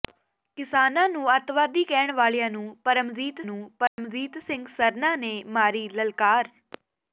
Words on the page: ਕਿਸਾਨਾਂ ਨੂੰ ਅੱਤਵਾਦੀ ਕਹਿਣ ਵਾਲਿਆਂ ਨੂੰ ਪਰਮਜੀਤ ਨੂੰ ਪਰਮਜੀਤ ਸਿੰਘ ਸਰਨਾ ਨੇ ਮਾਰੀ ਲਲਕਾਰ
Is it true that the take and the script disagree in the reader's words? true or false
false